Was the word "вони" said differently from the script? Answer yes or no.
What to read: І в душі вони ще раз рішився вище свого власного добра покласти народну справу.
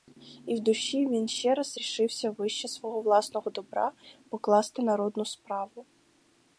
yes